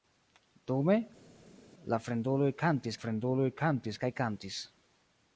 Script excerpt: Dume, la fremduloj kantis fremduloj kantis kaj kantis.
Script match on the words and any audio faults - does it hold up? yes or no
yes